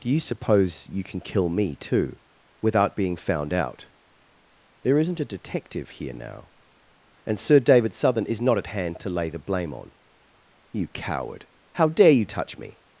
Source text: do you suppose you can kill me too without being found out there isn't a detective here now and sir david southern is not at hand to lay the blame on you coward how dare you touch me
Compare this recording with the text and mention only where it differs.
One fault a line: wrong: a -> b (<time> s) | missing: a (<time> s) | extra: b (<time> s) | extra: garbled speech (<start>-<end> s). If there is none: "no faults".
no faults